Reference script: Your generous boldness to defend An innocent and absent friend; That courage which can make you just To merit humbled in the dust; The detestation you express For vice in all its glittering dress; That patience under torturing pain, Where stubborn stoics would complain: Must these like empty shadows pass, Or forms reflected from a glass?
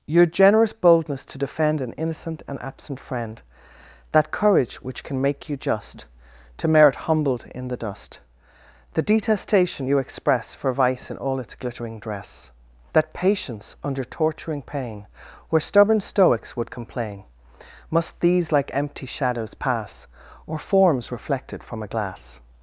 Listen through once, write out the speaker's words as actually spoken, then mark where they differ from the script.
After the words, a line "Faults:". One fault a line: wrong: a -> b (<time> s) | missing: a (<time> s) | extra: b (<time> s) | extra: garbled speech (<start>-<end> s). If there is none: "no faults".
Your generous boldness to defend An innocent and absent friend; That courage which can make you just To merit humbled in the dust; The detestation you express For vice in all its glittering dress; That patience under torturing pain, Where stubborn stoics would complain: Must these like empty shadows pass, Or forms reflected from a glass?
Faults:
no faults